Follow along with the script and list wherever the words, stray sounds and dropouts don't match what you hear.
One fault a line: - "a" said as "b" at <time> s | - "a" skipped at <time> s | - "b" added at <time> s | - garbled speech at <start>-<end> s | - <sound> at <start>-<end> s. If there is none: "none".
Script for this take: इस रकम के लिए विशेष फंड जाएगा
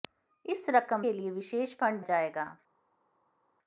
none